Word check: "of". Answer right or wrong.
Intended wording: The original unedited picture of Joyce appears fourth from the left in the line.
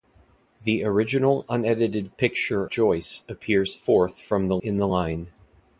wrong